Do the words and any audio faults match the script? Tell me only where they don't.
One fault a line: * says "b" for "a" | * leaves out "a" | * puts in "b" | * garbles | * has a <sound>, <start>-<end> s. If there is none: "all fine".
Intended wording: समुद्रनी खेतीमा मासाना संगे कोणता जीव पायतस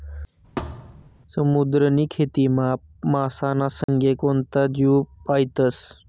* has a thud, 0.6-1.1 s
* has a dropout, 3.8-3.9 s